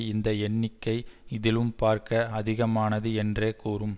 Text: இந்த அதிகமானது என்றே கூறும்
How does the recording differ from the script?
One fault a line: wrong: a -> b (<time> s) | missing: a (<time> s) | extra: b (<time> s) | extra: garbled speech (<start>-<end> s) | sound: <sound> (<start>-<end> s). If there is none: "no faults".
extra: எண்ணிக்கை இதிலும் பார்க்க (0.4 s)